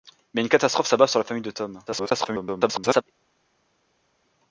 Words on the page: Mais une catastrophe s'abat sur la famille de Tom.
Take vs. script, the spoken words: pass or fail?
fail